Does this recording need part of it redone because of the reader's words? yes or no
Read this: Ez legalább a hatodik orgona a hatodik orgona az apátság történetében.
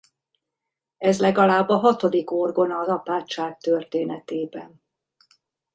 yes